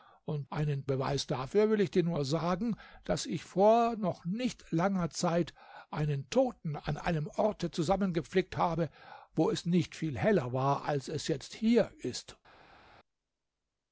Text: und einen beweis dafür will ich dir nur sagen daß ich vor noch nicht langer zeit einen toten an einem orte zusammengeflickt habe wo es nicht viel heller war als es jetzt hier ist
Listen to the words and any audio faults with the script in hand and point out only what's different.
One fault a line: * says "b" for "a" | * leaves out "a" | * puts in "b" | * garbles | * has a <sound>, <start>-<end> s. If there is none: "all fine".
all fine